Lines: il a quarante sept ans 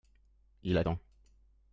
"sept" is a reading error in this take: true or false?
true